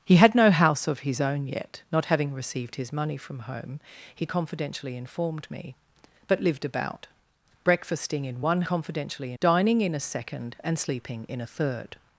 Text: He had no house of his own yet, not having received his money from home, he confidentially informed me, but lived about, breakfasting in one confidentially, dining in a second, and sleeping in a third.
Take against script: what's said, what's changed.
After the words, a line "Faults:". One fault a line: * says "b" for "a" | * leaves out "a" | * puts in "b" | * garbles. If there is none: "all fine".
He had no house of his own yet, not having received his money from home, he confidentially informed me, but lived about, breakfasting in one confidentially, dining in a second, and sleeping in a third.
Faults:
all fine